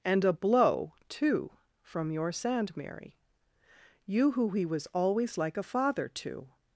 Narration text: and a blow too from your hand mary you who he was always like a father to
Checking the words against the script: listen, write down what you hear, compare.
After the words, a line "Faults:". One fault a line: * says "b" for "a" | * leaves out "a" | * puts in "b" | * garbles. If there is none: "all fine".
and a blow too from your sand mary you who he was always like a father to
Faults:
* says "sand" for "hand"